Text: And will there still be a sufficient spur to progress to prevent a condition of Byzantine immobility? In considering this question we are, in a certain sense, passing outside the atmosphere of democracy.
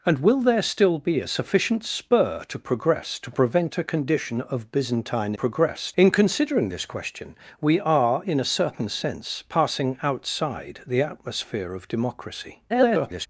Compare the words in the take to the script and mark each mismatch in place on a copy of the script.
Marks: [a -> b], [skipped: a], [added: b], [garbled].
And will there still be a sufficient spur to progress to prevent a condition of Byzantine [immobility? -> progress] In considering this question we are, in a certain sense, passing outside the atmosphere of democracy. [garbled]